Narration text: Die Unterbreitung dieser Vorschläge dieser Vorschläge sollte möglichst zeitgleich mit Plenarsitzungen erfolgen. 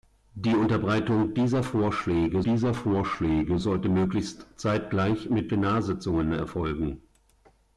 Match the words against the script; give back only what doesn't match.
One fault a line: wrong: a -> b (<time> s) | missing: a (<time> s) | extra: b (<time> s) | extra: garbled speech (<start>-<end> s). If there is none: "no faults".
no faults